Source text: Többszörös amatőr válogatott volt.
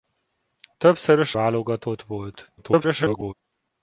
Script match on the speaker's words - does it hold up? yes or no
no